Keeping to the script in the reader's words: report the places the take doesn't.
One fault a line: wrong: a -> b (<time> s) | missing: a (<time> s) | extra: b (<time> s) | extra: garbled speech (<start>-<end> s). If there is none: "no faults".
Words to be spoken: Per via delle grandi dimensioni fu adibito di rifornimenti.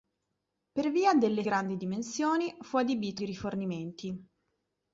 no faults